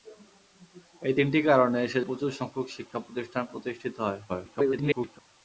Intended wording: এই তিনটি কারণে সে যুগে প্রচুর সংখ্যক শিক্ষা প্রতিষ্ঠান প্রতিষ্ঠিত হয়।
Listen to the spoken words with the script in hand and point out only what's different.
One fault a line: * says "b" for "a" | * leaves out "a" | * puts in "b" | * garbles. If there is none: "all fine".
* leaves out "যুগে"
* garbles